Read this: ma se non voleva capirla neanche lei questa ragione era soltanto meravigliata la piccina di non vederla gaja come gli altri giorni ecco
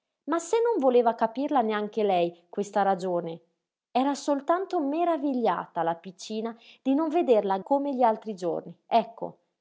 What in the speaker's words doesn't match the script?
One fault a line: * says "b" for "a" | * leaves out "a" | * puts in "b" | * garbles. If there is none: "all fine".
* leaves out "gaja"